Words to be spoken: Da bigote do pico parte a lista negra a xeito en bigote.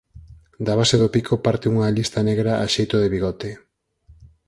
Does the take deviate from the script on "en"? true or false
true